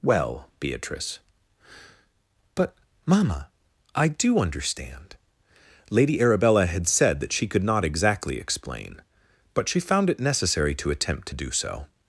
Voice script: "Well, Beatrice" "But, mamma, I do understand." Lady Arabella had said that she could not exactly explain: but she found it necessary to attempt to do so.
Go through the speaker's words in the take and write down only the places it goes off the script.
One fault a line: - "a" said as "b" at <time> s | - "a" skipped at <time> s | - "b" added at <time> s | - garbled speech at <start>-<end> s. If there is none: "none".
none